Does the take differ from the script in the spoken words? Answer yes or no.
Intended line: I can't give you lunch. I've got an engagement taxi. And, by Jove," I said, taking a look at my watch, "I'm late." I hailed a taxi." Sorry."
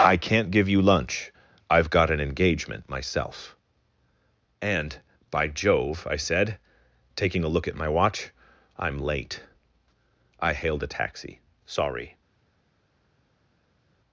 yes